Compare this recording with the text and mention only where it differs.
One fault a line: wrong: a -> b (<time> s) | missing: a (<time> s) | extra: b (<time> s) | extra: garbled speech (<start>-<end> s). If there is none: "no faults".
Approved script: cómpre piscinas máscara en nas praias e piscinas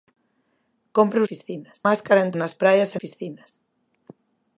no faults